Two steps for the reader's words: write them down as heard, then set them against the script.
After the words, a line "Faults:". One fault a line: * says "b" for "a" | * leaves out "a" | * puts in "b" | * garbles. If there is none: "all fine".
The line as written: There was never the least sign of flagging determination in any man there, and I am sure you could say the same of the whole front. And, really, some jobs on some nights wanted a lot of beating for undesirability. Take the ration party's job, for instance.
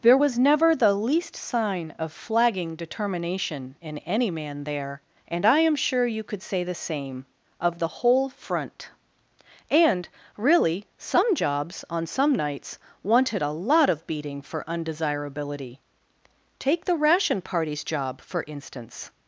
There was never the least sign of flagging determination in any man there, and I am sure you could say the same of the whole front. And, really, some jobs on some nights wanted a lot of beating for undesirability. Take the ration party's job, for instance.
Faults:
all fine